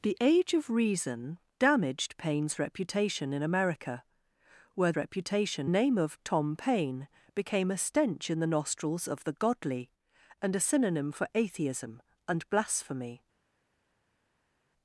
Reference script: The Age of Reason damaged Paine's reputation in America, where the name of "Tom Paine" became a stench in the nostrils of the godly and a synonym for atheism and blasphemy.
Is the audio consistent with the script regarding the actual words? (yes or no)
no